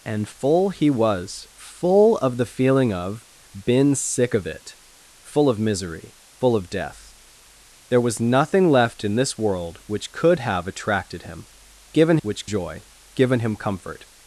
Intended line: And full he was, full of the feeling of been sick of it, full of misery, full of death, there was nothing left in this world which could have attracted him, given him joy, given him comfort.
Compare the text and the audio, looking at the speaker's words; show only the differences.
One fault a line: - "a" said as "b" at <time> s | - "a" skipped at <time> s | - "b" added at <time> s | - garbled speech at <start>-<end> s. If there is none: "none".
- "him" said as "which" at 12.2 s